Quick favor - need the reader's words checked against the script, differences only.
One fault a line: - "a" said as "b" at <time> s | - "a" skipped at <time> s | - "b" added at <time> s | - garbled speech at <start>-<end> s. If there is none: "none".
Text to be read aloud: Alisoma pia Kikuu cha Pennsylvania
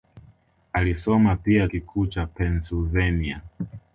none